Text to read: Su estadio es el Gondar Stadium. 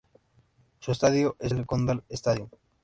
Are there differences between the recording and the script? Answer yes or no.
no